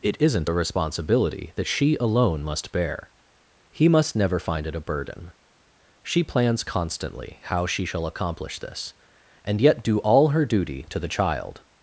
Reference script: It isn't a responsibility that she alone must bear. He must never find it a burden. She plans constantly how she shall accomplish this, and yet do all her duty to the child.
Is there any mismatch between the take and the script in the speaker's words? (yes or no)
no